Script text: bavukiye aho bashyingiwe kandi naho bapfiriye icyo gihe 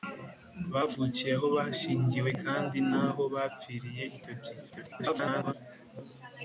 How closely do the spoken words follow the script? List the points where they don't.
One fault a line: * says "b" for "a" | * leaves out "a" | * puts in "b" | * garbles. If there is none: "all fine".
* garbles